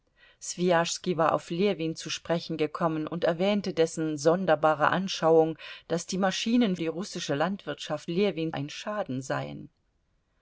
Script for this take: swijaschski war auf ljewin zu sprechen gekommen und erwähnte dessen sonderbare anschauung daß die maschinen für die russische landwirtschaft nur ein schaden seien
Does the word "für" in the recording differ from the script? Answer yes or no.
yes